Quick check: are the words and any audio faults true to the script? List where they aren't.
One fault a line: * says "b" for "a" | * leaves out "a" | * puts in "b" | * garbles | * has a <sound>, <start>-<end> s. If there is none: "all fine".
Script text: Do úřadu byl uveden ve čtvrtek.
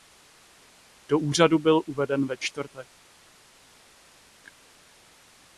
all fine